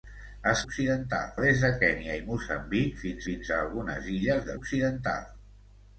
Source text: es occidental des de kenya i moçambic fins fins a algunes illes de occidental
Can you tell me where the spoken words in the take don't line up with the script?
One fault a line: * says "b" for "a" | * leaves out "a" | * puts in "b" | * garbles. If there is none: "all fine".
all fine